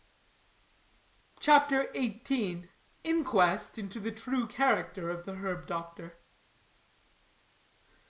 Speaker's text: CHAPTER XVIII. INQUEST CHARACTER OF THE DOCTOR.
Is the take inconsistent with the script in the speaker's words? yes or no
yes